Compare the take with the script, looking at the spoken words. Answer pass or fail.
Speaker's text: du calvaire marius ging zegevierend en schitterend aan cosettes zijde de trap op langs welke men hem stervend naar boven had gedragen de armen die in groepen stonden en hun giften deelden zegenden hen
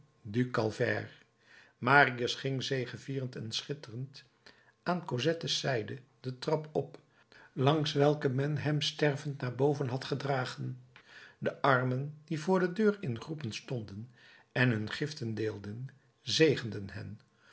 fail